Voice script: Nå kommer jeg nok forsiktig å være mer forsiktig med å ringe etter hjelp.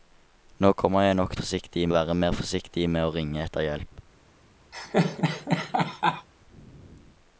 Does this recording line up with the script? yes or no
yes